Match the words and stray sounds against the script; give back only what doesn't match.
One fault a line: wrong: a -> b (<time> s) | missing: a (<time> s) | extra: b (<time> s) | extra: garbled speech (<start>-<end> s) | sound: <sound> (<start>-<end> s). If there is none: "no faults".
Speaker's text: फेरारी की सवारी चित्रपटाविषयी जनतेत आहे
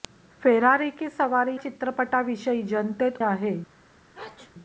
sound: sneeze (4.1-4.5 s)